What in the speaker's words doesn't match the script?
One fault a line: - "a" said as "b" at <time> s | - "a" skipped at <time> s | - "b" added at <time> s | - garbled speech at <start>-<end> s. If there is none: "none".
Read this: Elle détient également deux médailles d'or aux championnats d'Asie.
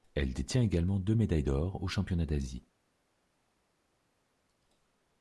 none